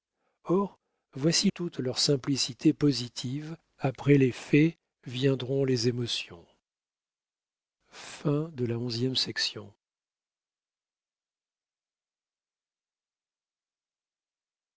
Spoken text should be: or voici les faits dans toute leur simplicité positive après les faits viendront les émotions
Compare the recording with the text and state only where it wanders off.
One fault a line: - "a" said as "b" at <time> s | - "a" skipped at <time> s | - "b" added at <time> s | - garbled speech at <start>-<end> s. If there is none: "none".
- "les faits dans" skipped at 1.5 s